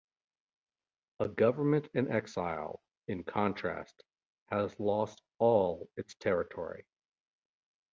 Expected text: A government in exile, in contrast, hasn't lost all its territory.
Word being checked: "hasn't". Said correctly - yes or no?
no